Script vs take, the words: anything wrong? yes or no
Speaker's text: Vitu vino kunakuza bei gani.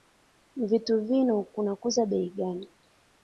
no